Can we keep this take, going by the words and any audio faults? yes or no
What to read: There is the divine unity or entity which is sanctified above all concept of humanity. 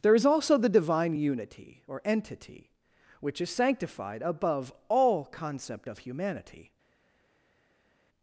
no